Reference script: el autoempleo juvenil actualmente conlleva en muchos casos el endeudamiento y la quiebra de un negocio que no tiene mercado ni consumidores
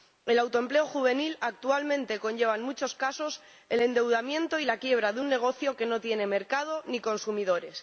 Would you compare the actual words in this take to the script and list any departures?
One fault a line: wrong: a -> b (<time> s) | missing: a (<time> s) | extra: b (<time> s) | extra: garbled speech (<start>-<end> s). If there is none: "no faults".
no faults